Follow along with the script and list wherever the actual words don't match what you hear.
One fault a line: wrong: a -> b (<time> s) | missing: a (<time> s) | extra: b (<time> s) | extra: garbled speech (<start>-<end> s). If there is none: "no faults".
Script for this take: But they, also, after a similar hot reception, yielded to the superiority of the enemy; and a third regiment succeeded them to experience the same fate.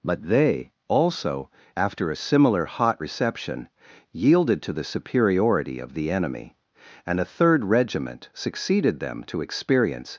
missing: the same fate (10.1 s)